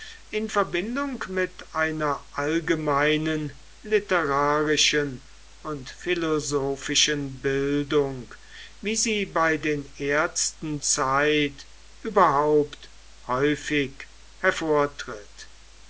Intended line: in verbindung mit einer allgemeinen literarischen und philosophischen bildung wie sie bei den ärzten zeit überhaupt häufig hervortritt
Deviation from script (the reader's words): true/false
false